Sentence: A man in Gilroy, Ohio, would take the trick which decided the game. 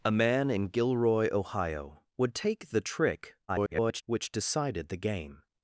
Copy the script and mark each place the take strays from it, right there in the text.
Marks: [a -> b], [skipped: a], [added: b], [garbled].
A man in Gilroy, Ohio, would take the trick [garbled] which decided the game.